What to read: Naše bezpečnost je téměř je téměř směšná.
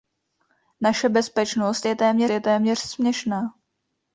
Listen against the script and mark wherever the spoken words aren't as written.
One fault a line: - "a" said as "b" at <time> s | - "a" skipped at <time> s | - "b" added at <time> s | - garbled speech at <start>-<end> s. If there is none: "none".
none